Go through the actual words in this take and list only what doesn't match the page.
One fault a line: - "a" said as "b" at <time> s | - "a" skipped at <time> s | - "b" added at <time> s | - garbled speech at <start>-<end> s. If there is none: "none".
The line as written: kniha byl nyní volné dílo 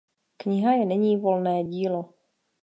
- "byl" said as "je" at 0.7 s